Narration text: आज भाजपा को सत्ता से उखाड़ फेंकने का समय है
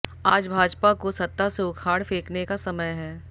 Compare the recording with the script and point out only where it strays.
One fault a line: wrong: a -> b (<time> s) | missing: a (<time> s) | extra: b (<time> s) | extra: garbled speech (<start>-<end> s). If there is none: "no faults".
no faults